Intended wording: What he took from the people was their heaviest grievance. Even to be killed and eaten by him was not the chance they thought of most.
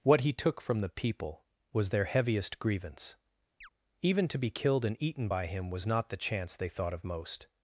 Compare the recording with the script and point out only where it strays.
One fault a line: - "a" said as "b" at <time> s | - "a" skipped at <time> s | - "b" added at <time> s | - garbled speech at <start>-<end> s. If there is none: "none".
none